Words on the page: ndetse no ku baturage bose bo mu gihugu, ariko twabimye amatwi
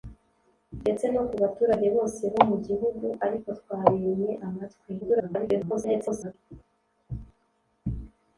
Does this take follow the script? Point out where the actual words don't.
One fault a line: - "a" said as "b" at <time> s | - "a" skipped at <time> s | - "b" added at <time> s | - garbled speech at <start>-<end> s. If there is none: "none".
- garbled speech at 5.0-6.3 s